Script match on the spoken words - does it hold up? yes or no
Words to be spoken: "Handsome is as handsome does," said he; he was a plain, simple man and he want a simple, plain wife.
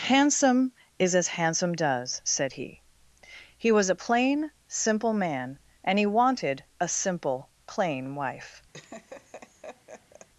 no